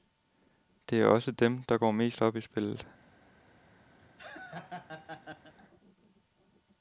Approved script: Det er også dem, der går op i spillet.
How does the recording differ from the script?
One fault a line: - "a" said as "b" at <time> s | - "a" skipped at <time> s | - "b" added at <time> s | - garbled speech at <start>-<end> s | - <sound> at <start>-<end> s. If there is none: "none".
- "mest" added at 1.9 s
- laugh at 4.0-5.5 s